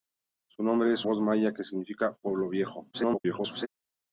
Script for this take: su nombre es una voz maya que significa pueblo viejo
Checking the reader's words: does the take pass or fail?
fail